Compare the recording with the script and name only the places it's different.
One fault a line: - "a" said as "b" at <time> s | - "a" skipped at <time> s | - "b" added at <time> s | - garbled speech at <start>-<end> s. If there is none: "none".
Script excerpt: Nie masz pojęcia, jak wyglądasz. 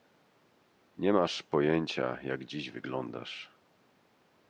- "dziś" added at 2.5 s